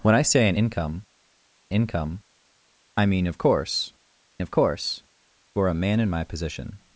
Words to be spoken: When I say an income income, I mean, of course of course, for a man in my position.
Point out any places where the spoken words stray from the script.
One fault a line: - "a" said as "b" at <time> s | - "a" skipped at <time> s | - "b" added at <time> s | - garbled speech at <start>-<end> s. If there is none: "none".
none